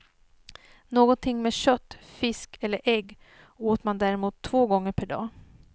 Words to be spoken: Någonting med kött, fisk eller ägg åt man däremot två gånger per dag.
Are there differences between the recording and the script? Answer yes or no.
no